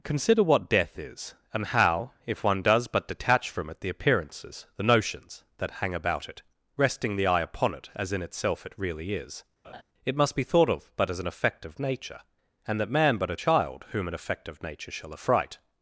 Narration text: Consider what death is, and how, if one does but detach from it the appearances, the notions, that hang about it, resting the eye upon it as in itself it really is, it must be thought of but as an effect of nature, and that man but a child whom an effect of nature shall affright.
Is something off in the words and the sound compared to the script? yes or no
yes